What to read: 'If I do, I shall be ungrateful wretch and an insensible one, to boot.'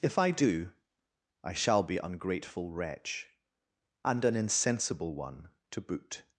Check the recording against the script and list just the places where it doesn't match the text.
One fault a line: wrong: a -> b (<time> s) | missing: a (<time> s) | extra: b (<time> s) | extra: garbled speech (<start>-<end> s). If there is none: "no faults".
no faults